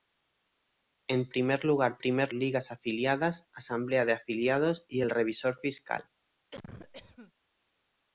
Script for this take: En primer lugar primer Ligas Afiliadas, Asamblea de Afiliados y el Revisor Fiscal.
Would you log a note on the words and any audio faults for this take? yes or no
yes